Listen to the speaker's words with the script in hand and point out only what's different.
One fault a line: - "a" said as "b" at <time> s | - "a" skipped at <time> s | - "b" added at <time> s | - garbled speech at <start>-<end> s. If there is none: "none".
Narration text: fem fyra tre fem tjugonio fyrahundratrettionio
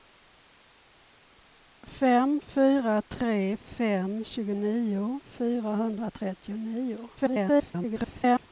- garbled speech at 7.2-8.5 s